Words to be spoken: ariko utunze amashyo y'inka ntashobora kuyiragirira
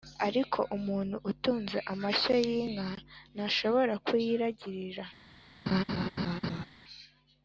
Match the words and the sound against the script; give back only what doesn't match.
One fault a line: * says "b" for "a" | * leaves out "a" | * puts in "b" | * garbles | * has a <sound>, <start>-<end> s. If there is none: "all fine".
* puts in "umuntu"
* has a laugh, 5.7-6.7 s